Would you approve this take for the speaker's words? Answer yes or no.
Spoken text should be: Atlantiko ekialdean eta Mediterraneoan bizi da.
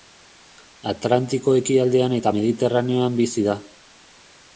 yes